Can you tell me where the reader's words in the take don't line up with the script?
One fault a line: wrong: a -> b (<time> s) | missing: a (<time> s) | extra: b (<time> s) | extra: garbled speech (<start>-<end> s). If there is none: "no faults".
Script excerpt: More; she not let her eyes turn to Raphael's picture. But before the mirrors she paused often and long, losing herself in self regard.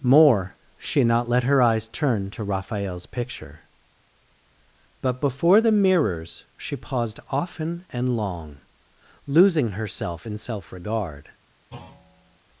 no faults